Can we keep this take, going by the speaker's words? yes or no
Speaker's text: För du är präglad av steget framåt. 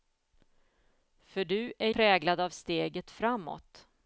yes